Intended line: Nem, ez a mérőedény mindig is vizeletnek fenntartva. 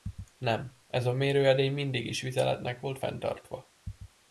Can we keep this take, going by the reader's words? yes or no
no